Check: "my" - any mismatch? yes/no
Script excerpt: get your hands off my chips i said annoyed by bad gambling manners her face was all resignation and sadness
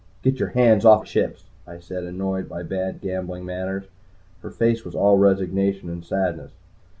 yes